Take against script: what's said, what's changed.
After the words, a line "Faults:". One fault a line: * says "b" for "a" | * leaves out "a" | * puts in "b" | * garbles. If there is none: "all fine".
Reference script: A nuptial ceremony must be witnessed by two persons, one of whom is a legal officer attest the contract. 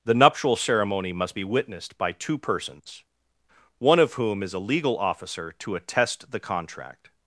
The nuptial ceremony must be witnessed by two persons, one of whom is a legal officer to attest the contract.
Faults:
* says "The" for "A"
* puts in "to"